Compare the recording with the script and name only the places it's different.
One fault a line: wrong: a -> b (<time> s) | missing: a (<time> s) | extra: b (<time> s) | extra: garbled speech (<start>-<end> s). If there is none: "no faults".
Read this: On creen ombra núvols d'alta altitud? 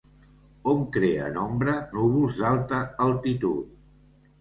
no faults